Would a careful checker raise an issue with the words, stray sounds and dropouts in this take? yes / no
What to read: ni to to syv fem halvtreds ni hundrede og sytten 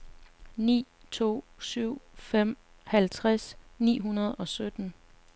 yes